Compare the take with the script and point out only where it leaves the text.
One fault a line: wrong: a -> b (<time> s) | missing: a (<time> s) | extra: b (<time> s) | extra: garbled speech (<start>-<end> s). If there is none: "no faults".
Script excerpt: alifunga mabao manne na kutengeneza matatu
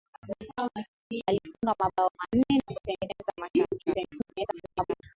extra: garbled speech (3.9-5.0 s)